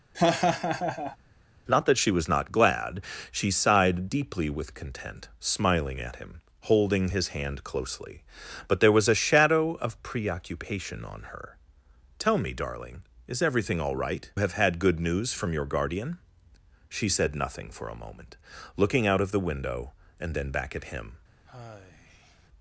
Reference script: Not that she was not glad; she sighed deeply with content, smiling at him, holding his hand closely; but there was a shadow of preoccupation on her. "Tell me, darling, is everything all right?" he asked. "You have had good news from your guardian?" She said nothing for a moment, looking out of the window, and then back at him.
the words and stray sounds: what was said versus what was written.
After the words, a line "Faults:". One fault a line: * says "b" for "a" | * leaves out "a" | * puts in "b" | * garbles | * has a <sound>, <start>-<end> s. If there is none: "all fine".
Not that she was not glad; she sighed deeply with content, smiling at him, holding his hand closely; but there was a shadow of preoccupation on her. "Tell me, darling, is everything all right?" have had good news from your guardian?" She said nothing for a moment, looking out of the window, and then back at him.
Faults:
* has a laugh, 0.1-1.2 s
* leaves out "he asked You"
* has a sigh, 21.5-22.5 s